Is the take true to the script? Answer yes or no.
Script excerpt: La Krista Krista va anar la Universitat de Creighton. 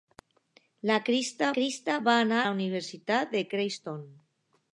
yes